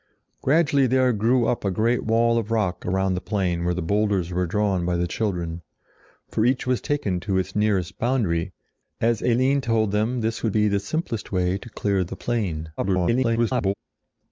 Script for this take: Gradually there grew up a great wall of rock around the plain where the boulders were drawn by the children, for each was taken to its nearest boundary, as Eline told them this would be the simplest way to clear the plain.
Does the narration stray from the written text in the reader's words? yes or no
yes